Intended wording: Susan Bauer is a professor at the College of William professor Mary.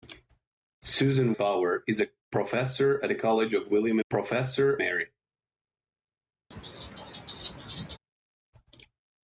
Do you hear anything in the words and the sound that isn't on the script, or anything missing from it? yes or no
yes